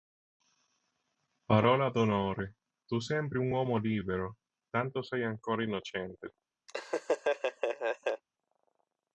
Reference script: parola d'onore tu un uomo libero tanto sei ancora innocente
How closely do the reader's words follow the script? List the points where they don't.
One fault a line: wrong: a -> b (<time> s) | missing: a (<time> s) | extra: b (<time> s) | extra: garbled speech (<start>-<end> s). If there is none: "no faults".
extra: sembri (3.0 s)